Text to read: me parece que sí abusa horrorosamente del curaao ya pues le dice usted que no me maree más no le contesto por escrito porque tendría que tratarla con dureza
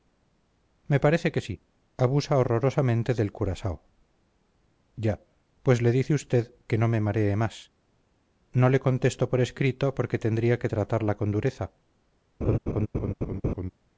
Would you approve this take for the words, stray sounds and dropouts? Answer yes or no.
no